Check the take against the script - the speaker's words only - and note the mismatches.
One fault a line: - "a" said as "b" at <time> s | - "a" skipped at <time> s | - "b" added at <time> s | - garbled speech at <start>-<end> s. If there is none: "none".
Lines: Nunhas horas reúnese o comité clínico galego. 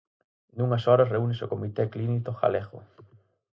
none